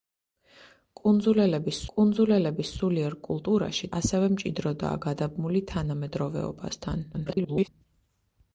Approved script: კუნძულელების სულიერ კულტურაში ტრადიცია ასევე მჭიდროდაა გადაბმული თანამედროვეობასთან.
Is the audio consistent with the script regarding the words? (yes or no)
no